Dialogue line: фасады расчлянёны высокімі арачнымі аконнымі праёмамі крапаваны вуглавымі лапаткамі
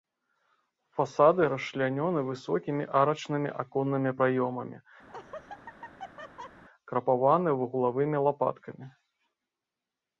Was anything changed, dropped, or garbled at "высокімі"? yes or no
no